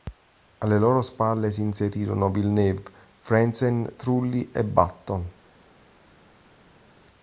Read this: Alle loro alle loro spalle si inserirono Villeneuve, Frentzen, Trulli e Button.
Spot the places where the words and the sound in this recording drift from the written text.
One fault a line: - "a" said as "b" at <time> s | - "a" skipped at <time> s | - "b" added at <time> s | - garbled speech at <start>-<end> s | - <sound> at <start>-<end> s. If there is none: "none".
- "alle loro" skipped at 1.0 s